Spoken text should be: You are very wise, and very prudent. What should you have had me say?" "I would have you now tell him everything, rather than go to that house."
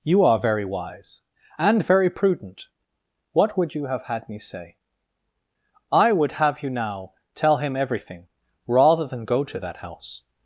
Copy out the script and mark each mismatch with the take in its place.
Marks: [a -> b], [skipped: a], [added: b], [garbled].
You are very wise, and very prudent. What [should -> would] you have had me say?" "I would have you now tell him everything, rather than go to that house."